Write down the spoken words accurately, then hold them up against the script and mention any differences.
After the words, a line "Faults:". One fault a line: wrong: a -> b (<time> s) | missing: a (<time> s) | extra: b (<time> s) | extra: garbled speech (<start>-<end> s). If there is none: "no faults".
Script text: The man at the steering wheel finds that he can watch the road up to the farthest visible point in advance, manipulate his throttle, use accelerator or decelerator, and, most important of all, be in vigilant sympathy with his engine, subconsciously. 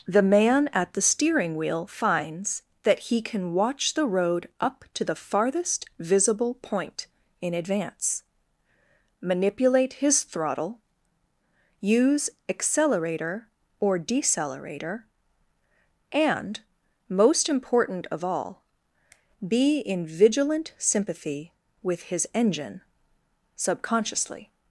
The man at the steering wheel finds that he can watch the road up to the farthest visible point in advance, manipulate his throttle, use accelerator or decelerator, and, most important of all, be in vigilant sympathy with his engine, subconsciously.
Faults:
no faults